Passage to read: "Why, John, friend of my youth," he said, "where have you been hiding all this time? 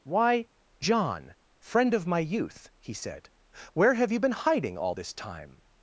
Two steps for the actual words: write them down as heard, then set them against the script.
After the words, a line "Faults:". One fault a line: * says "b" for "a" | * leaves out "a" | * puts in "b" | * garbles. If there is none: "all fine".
"Why, John, friend of my youth," he said, "where have you been hiding all this time?
Faults:
all fine